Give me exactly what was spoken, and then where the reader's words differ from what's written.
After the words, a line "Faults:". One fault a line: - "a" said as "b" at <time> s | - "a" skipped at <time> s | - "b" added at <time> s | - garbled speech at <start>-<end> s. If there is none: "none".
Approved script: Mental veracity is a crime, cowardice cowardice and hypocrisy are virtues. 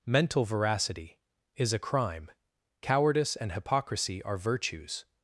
Mental veracity is a crime, cowardice and hypocrisy are virtues.
Faults:
- "cowardice" skipped at 3.4 s